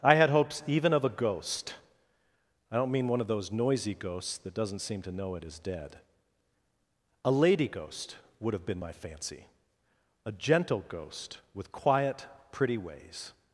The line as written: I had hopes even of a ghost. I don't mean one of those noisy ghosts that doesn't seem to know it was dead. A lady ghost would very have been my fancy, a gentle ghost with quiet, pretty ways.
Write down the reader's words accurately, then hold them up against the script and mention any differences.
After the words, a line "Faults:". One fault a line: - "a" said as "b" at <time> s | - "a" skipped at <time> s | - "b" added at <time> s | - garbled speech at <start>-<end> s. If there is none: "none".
I had hopes even of a ghost. I don't mean one of those noisy ghosts that doesn't seem to know it is dead. A lady ghost would have been my fancy, a gentle ghost with quiet, pretty ways.
Faults:
- "was" said as "is" at 5.4 s
- "very" skipped at 8.5 s